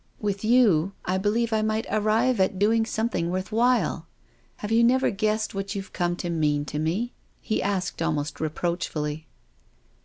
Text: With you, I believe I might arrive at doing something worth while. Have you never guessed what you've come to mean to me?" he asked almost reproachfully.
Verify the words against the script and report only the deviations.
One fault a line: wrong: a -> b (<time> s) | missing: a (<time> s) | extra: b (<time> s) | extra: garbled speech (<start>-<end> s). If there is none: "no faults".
no faults